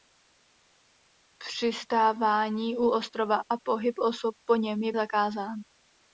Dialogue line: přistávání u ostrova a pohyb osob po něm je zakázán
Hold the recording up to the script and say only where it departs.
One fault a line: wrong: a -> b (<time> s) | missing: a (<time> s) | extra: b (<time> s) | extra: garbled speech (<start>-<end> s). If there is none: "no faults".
no faults